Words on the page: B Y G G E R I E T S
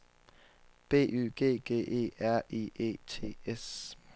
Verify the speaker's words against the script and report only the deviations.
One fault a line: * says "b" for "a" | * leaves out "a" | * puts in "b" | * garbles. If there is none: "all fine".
all fine